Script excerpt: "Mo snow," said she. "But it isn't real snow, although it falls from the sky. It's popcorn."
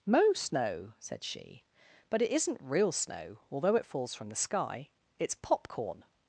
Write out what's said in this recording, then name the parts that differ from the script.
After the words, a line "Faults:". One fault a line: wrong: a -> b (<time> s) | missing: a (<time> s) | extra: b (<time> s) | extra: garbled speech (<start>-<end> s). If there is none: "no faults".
"Mo snow," said she. "But it isn't real snow, although it falls from the sky. It's popcorn."
Faults:
no faults